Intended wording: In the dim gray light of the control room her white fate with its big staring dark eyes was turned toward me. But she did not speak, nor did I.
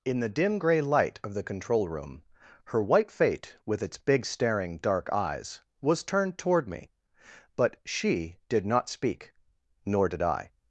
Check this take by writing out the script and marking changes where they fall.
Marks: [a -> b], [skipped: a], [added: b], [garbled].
In the dim gray light of the control room her white fate with its big staring dark eyes was turned toward me. But she did not speak, nor did I.